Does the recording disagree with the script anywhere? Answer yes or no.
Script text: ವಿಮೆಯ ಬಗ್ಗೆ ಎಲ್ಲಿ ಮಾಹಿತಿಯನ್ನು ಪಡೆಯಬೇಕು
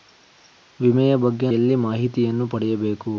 no